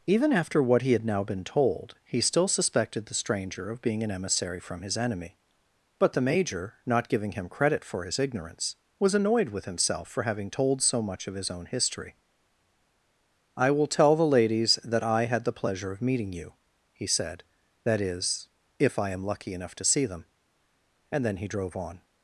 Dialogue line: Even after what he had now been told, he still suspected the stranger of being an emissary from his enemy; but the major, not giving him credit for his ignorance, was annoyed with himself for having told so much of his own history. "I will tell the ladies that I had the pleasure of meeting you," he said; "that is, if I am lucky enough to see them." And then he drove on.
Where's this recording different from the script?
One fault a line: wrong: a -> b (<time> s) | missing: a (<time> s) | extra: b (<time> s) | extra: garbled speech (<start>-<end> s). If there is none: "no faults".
no faults